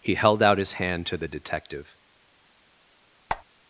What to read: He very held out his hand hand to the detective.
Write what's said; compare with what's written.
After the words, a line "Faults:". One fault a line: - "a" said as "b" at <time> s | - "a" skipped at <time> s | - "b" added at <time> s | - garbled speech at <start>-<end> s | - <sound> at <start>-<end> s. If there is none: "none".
He held out his hand to the detective.
Faults:
- "very" skipped at 0.1 s
- "hand" skipped at 1.1 s
- squeak at 3.3-3.4 s